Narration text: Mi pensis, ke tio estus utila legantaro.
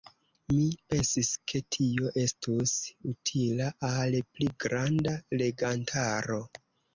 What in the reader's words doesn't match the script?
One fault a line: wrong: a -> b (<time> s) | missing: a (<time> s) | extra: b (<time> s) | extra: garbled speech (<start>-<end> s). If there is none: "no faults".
extra: al pli granda (3.9 s)